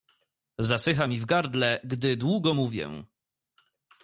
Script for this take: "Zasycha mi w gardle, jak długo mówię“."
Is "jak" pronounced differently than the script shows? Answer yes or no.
yes